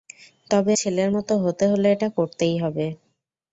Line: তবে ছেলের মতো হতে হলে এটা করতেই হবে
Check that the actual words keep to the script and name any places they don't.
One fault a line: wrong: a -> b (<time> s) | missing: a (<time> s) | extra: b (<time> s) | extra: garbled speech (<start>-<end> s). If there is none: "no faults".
no faults